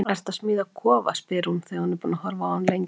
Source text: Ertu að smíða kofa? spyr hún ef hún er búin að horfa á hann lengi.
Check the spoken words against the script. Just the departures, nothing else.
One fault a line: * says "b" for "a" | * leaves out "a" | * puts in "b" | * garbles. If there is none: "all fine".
* says "þegar" for "ef"